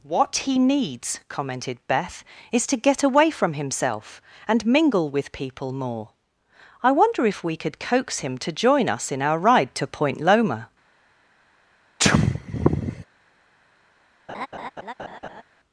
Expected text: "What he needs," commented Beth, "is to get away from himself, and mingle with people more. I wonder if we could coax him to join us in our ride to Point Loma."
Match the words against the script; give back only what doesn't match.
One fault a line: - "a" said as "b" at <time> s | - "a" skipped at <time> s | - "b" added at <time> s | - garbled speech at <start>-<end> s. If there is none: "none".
none